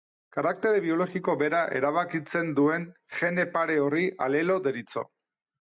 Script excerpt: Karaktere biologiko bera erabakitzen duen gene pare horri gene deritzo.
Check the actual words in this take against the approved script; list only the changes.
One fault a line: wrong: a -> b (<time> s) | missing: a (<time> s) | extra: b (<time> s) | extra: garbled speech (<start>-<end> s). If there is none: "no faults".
wrong: gene -> alelo (4.3 s)